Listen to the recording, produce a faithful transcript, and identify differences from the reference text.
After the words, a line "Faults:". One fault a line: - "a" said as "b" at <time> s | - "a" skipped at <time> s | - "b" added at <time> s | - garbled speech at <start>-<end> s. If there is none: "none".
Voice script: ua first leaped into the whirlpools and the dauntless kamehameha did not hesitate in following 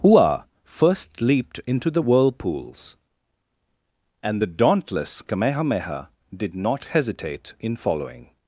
ua first leaped into the whirlpools and the dauntless kamehameha did not hesitate in following
Faults:
none